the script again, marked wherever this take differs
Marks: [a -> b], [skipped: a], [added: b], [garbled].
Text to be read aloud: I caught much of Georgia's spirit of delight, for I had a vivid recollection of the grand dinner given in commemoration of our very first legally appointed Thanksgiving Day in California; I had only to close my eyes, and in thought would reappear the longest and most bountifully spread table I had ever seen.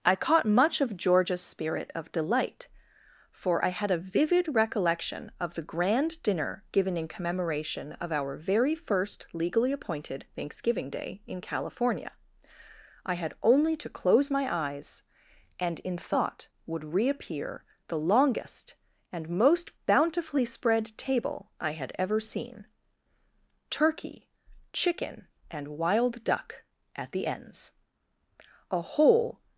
I caught much of Georgia's spirit of delight, for I had a vivid recollection of the grand dinner given in commemoration of our very first legally appointed Thanksgiving Day in California; I had only to close my eyes, and in thought would reappear the longest and most bountifully spread table I had ever seen. [added: Turkey chicken and wild duck at the ends a whole]